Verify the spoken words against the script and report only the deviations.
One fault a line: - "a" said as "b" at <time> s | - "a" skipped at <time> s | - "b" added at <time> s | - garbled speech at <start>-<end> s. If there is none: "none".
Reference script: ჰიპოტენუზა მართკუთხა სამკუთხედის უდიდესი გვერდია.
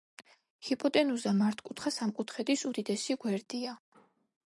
none